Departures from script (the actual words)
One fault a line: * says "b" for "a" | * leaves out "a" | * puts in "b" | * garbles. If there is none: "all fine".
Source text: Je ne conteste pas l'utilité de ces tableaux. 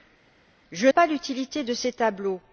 * leaves out "ne conteste"